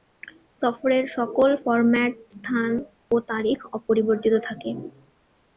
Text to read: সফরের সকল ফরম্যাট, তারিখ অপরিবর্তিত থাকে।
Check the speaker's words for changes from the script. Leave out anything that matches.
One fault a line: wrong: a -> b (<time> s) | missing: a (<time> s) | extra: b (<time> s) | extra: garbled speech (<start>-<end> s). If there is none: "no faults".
extra: স্থান ও (2.3 s)